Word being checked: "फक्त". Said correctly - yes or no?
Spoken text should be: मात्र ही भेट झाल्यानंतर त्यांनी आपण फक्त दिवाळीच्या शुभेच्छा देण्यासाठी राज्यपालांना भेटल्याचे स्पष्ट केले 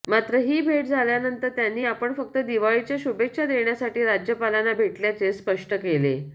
yes